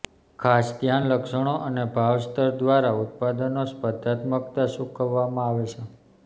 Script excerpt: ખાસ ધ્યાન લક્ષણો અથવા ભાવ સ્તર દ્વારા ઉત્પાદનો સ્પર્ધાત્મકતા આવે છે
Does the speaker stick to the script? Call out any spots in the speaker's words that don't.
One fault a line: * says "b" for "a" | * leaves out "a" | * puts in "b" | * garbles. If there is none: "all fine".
* says "અને" for "અથવા"
* puts in "ચૂકવવામાં"